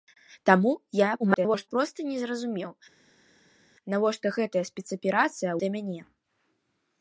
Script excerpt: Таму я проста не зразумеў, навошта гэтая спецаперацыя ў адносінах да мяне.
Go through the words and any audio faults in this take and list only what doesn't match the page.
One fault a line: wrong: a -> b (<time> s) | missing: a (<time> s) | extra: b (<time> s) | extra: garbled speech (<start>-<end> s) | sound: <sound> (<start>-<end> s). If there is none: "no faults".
extra: garbled speech (1.2-1.7 s)
missing: ў адносінах (5.5 s)